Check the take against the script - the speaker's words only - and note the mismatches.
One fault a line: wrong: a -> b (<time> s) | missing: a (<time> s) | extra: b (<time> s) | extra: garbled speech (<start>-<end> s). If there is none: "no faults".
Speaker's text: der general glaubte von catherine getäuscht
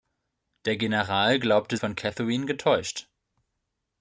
no faults